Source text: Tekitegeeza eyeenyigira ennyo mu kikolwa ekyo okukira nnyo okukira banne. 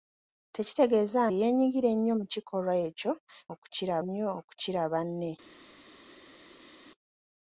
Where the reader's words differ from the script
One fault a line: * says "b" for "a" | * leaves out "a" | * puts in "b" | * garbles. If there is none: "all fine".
all fine